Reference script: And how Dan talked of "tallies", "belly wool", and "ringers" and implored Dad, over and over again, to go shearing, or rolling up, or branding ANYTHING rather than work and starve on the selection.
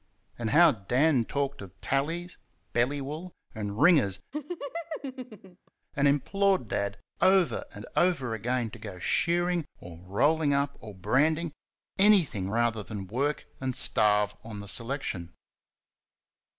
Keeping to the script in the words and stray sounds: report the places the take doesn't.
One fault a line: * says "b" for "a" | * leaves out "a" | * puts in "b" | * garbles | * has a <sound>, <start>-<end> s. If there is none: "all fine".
* has a laugh, 4.3-5.7 s